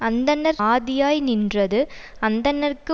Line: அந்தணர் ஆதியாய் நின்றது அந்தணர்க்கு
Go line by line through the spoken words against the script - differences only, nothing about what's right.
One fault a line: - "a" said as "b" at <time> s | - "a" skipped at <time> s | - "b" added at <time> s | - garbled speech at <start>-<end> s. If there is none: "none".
none